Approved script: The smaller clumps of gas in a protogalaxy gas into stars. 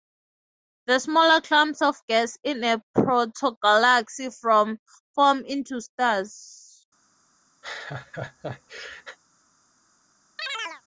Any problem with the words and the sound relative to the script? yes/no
yes